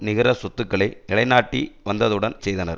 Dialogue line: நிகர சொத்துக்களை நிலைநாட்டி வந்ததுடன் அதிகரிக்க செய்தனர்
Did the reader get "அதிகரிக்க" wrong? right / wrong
wrong